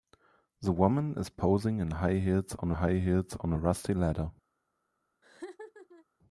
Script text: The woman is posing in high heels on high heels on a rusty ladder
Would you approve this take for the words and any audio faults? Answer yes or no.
no